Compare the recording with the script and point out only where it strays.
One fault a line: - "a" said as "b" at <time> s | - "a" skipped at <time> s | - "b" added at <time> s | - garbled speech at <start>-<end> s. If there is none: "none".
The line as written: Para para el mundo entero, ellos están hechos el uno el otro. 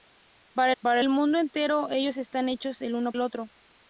none